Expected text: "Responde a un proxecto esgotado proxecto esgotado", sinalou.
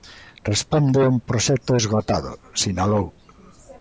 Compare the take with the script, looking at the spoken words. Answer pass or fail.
fail